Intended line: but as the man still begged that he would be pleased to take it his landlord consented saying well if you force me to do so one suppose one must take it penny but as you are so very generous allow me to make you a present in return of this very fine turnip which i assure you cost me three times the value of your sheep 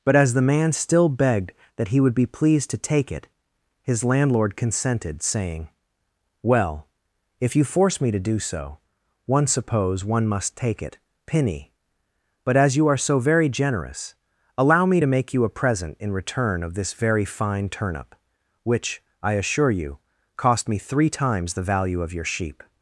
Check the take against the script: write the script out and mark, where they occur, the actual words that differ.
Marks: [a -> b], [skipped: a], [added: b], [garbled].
but as the man still begged that he would be pleased to take it his landlord consented saying well if you force me to do so one suppose one must take it penny but as you are so very generous allow me to make you a present in return of this very fine turnip which i assure you cost me three times the value of your sheep